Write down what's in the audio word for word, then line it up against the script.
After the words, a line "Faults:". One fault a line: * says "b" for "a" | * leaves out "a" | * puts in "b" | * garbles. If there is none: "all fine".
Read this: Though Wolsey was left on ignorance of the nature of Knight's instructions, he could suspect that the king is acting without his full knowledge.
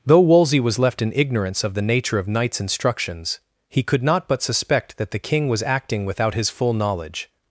Though Wolsey was left in ignorance of the nature of Knight's instructions, he could not but suspect that the king was acting without his full knowledge.
Faults:
* says "in" for "on"
* puts in "not but"
* says "was" for "is"